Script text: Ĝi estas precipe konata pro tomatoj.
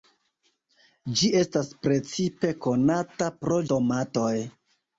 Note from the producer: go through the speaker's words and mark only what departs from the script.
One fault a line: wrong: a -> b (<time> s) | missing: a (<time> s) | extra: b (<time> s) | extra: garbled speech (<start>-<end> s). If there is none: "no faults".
no faults